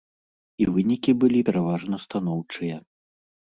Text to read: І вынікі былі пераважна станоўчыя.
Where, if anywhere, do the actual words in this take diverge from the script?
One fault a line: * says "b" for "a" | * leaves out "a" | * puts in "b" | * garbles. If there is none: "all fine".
all fine